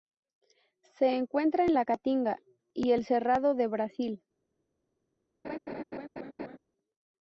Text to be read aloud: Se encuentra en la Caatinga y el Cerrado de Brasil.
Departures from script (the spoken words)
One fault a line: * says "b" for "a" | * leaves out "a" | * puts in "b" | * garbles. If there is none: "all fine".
all fine